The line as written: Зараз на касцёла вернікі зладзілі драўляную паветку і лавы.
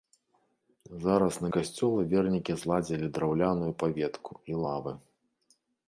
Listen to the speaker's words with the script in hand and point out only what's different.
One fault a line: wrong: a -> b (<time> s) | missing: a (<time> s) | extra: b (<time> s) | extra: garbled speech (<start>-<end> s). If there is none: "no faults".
no faults